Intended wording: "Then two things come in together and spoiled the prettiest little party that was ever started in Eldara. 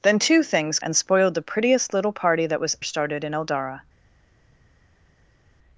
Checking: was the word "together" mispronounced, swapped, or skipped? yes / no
yes